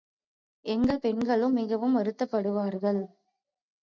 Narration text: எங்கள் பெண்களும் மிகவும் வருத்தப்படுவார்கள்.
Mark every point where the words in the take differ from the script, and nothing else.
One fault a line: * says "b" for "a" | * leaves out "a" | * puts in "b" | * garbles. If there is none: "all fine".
all fine